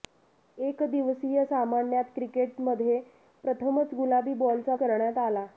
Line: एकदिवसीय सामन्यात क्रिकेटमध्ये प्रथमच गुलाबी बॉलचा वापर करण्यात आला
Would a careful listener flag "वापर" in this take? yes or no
yes